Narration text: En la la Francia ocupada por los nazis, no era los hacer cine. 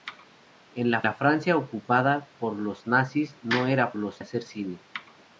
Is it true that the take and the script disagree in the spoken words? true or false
false